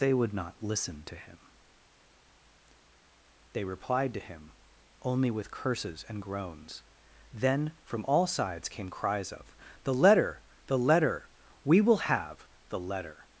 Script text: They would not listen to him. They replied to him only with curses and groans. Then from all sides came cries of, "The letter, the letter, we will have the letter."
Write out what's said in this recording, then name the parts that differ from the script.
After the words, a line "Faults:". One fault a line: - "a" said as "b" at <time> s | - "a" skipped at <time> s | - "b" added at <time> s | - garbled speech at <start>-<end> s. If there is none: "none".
They would not listen to him. They replied to him only with curses and groans. Then from all sides came cries of, "The letter, the letter, we will have the letter."
Faults:
none